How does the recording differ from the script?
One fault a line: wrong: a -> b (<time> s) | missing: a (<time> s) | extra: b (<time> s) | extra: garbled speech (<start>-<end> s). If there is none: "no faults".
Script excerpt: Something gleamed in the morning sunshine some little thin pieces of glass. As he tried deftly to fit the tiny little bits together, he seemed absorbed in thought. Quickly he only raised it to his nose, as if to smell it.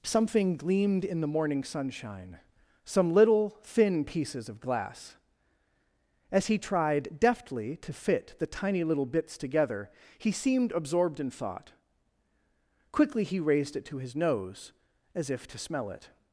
missing: only (13.4 s)